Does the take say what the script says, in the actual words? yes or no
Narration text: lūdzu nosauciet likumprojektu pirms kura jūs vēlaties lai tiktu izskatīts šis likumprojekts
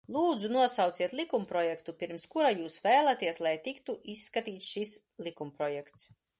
yes